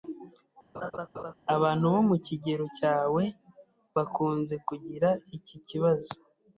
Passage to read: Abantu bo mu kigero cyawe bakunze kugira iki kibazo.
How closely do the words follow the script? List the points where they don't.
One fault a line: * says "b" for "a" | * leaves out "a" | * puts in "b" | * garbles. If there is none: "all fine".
all fine